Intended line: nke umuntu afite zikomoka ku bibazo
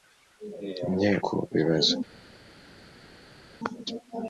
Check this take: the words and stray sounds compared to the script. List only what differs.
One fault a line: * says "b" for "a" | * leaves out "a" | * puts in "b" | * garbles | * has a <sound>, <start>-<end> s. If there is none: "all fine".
* leaves out "umuntu afite zikomoka"